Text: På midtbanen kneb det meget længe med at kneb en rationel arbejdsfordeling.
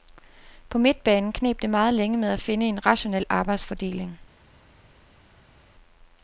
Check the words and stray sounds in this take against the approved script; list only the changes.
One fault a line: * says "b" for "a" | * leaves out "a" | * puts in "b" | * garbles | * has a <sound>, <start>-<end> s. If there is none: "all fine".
* says "finde" for "kneb"